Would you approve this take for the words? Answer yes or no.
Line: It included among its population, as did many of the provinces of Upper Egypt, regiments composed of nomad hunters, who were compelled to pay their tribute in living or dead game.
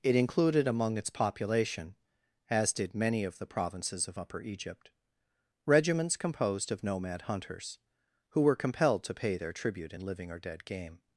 yes